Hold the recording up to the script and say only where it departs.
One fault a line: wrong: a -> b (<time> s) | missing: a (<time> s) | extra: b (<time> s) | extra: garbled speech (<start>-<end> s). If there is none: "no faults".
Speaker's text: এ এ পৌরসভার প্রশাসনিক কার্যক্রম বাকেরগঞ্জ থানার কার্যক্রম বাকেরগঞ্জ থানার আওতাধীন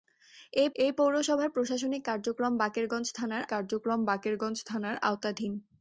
no faults